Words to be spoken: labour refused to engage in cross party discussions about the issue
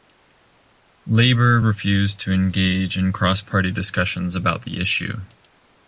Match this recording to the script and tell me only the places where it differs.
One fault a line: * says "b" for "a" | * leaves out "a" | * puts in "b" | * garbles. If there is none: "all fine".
all fine